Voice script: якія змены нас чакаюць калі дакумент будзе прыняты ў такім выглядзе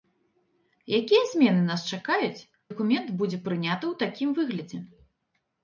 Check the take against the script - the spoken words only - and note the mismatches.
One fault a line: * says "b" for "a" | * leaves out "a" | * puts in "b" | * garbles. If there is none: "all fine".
* leaves out "калі"